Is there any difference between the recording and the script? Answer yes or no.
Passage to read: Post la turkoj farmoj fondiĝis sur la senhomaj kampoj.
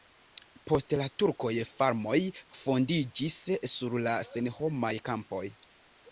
no